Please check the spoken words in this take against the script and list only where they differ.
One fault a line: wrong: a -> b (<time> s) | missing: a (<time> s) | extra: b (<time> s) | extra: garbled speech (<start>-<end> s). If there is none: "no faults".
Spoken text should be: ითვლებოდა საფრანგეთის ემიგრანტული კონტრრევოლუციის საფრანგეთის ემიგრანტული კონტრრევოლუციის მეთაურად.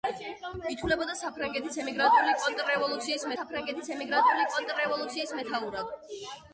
no faults